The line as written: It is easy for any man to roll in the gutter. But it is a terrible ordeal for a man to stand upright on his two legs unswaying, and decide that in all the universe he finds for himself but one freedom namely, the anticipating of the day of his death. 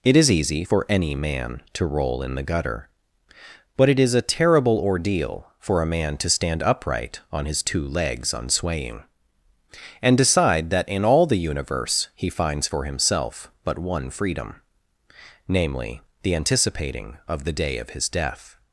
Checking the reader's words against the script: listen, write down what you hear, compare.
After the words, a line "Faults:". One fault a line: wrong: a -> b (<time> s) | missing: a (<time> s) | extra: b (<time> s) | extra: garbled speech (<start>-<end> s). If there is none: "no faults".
It is easy for any man to roll in the gutter. But it is a terrible ordeal for a man to stand upright on his two legs unswaying, and decide that in all the universe he finds for himself but one freedom namely, the anticipating of the day of his death.
Faults:
no faults